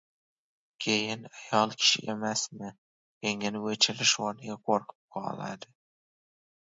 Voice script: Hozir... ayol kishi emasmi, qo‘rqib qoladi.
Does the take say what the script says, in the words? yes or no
no